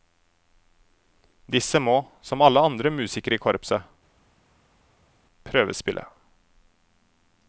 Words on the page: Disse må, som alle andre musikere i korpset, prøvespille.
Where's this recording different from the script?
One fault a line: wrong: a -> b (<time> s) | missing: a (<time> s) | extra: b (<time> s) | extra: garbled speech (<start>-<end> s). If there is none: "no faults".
no faults